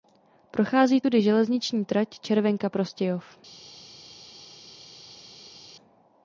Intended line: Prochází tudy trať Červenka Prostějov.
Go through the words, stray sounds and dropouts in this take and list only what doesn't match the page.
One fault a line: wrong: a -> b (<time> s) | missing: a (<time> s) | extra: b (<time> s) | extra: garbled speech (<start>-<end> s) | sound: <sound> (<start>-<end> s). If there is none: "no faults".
extra: železniční (1.2 s)